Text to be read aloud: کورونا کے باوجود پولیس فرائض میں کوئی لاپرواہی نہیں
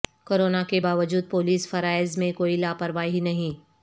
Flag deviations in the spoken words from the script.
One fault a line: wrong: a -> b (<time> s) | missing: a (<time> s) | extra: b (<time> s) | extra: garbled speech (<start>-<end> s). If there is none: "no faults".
no faults